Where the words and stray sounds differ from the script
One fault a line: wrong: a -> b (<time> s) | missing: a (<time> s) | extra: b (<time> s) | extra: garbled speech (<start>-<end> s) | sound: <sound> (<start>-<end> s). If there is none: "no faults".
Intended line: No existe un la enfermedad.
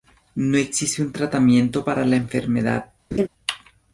extra: tratamiento para (1.1 s)
sound: laugh (3.1-3.3 s)